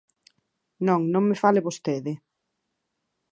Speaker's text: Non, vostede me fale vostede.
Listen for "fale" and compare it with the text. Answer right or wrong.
right